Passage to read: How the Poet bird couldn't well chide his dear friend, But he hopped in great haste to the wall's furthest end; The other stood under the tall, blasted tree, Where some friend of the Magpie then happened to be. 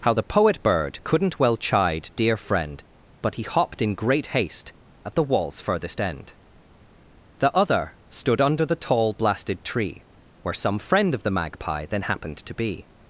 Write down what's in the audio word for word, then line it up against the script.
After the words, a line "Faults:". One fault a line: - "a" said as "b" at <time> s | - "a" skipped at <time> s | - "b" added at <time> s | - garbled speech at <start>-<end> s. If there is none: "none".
How the Poet bird couldn't well chide dear friend, But he hopped in great haste at the wall's furthest end; The other stood under the tall, blasted tree, Where some friend of the Magpie then happened to be.
Faults:
- "his" skipped at 2.1 s
- "to" said as "at" at 5.0 s